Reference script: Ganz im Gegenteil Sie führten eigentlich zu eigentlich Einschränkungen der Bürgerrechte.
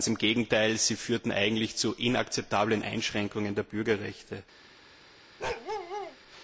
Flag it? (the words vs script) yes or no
yes